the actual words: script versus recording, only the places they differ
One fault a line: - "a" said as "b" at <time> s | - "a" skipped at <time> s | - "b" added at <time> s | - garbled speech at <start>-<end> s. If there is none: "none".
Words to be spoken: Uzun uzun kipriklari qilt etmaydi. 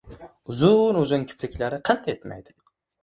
none